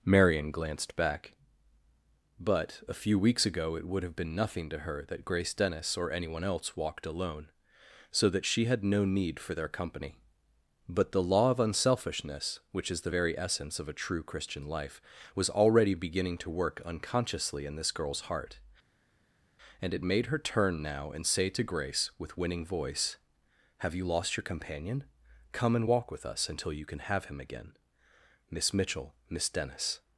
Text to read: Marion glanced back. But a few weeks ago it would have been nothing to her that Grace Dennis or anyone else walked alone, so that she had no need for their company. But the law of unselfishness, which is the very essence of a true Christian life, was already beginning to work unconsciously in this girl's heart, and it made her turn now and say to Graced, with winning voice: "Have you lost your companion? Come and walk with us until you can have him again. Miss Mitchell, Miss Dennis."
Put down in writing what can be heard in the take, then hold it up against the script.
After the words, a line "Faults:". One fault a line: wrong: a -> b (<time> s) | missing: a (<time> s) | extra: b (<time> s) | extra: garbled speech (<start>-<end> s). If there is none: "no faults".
Marion glanced back. But a few weeks ago it would have been nothing to her that Grace Dennis or anyone else walked alone, so that she had no need for their company. But the law of unselfishness, which is the very essence of a true Christian life, was already beginning to work unconsciously in this girl's heart, and it made her turn now and say to Grace, with winning voice: "Have you lost your companion? Come and walk with us until you can have him again. Miss Mitchell, Miss Dennis."
Faults:
wrong: Graced -> Grace (21.6 s)